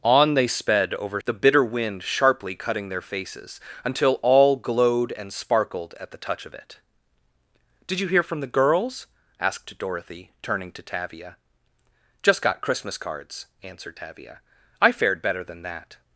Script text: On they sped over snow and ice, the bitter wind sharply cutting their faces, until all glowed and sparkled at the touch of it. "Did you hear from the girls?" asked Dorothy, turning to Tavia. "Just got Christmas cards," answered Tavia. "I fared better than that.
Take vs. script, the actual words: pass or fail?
fail